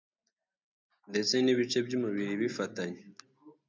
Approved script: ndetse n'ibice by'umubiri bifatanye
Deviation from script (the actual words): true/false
false